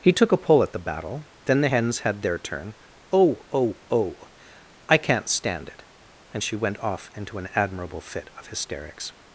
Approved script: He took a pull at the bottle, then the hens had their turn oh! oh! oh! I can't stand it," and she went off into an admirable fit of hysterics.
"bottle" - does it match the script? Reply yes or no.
no